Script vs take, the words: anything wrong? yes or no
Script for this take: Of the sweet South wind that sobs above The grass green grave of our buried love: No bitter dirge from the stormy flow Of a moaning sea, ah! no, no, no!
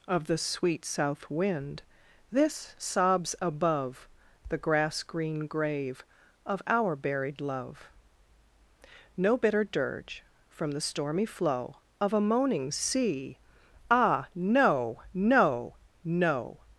yes